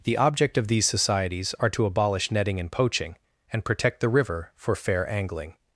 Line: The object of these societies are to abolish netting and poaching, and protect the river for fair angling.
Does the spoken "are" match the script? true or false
true